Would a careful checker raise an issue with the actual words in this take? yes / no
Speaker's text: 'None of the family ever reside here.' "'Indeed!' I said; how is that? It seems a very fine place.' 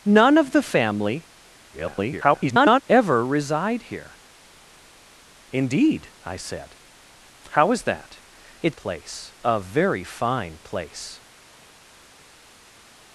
yes